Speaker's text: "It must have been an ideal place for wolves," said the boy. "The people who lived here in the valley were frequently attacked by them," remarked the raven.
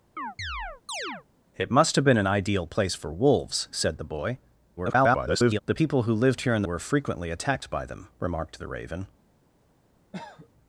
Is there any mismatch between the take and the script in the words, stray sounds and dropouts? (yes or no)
yes